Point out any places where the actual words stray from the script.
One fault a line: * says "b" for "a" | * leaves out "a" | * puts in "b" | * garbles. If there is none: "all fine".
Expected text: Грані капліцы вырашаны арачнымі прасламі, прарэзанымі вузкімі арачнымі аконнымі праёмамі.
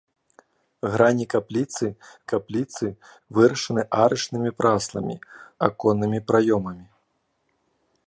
* puts in "капліцы"
* leaves out "прарэзанымі вузкімі арачнымі"